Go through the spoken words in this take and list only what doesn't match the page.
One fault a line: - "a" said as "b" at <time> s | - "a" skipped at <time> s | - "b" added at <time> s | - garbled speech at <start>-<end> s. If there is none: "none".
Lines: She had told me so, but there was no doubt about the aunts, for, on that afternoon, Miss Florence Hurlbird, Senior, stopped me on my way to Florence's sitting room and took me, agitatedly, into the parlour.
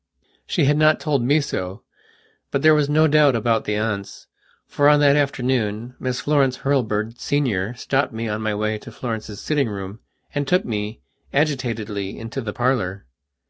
- "not" added at 0.8 s